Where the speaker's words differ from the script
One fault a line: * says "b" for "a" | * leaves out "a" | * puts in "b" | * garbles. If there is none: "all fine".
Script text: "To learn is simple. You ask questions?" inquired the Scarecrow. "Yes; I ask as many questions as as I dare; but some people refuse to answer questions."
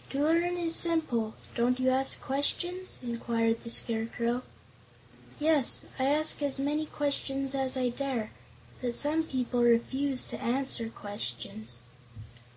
* puts in "Don't"
* leaves out "as"